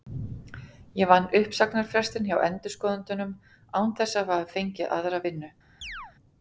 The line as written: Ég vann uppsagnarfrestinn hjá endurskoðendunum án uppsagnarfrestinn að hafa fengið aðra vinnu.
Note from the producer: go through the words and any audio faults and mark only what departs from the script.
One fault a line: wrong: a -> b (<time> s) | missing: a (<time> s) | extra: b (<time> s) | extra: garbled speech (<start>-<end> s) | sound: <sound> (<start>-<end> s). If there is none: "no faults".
wrong: uppsagnarfrestinn -> þess (4.0 s)
sound: chirp (5.8-6.1 s)